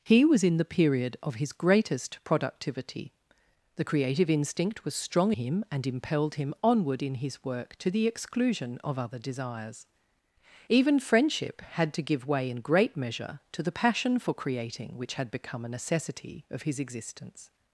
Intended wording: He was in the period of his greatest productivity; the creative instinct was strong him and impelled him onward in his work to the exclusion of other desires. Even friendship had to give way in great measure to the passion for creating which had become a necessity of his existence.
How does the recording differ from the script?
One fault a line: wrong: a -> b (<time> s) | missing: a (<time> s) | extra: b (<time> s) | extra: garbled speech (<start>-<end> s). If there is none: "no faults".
no faults